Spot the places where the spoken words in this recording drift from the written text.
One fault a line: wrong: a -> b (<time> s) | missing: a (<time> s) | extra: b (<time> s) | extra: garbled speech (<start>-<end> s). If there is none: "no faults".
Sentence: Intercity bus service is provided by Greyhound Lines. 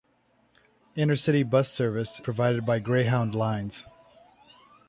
missing: is (2.2 s)